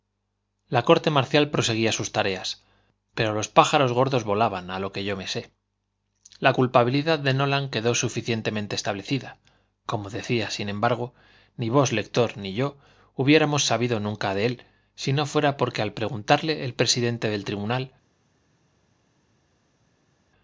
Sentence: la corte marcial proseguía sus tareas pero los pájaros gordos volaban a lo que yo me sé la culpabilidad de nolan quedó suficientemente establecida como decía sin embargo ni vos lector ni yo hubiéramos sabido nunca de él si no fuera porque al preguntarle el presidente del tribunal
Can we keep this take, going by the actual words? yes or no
yes